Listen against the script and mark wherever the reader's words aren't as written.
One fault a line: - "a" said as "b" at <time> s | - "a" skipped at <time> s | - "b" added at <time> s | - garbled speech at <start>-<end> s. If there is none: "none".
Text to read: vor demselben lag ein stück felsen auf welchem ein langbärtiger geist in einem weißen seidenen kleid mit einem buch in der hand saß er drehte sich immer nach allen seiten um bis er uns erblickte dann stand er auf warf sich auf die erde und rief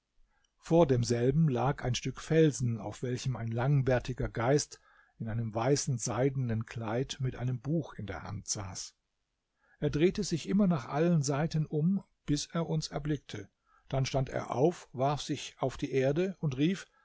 none